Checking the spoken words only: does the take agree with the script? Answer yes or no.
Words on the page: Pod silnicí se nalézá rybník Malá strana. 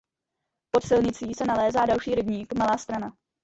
no